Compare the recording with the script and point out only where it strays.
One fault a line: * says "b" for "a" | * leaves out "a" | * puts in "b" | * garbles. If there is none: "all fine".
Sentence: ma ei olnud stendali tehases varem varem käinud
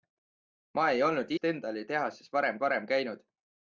all fine